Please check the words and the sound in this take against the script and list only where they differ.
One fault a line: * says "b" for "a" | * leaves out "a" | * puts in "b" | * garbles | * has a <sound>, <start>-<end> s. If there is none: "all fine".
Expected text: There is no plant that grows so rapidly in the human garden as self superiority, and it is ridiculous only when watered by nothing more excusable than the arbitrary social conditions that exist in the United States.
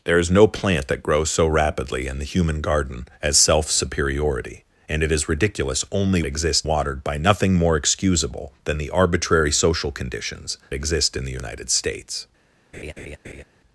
* says "exist" for "when"
* leaves out "that"
* has a laugh, 12.7-13.4 s